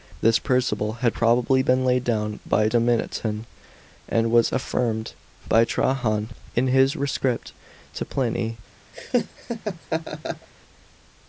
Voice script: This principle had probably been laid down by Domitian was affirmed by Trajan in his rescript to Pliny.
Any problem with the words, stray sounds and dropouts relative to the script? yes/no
yes